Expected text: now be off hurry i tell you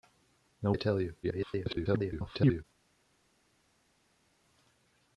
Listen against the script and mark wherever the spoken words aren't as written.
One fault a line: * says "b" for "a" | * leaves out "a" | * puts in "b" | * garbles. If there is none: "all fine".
* leaves out "be off hurry"
* garbles